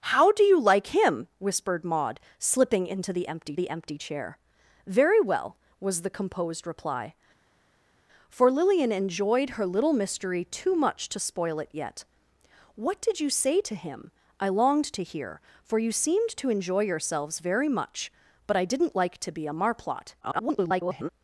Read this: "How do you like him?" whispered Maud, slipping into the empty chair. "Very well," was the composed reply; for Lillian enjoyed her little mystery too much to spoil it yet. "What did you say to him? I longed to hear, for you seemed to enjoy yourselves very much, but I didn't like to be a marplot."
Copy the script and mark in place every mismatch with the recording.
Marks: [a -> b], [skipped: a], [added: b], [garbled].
"How do you like him?" whispered Maud, slipping into the empty [added: the empty] chair. "Very well," was the composed reply; for Lillian enjoyed her little mystery too much to spoil it yet. "What did you say to him? I longed to hear, for you seemed to enjoy yourselves very much, but I didn't like to be a marplot." [garbled]